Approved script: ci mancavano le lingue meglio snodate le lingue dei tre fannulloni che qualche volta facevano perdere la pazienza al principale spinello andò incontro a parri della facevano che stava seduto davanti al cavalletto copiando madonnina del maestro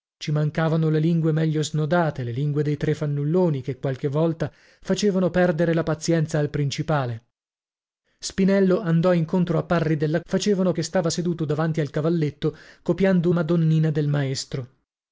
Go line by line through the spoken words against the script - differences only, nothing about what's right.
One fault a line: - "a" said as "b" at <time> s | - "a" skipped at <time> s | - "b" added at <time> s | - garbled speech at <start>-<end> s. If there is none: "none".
none